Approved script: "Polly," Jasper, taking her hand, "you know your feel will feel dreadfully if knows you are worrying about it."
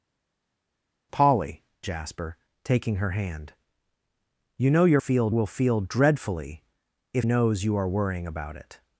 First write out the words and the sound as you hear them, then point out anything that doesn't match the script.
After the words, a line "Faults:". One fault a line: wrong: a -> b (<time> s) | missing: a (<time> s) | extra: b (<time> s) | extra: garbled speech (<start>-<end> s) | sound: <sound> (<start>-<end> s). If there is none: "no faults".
"Polly," Jasper, taking her hand, "you know your feel will feel dreadfully if knows you are worrying about it."
Faults:
no faults